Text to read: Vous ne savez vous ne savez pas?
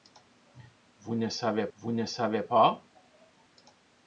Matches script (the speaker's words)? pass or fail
pass